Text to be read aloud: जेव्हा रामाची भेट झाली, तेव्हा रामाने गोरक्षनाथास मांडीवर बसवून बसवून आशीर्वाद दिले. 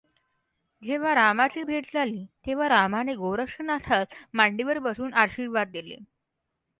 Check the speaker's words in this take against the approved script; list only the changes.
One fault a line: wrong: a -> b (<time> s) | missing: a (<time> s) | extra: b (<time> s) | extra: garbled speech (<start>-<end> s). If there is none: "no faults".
missing: बसवून (5.1 s)